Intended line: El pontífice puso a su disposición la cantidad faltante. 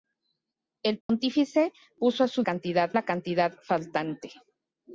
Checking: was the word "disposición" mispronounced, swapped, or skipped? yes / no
yes